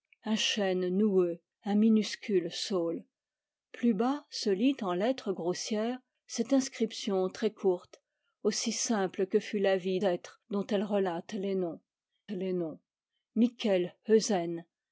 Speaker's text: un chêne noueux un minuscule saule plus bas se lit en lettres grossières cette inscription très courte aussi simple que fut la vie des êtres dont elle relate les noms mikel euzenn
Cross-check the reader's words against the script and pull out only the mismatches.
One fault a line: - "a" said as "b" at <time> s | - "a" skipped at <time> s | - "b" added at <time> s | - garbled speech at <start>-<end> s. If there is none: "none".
- "des" skipped at 10.0 s
- "les noms" added at 12.3 s